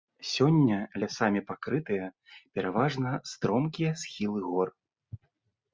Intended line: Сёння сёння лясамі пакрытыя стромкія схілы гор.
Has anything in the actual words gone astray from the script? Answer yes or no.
yes